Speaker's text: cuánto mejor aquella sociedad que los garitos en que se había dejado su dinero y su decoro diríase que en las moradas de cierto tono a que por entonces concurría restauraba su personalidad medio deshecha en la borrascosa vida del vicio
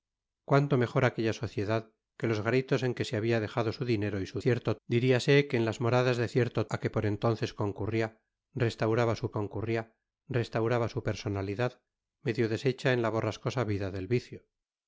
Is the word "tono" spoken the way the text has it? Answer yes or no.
no